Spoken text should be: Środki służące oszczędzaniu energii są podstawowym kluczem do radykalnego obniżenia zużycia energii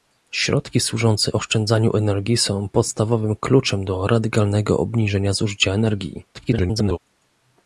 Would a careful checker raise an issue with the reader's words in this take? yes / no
yes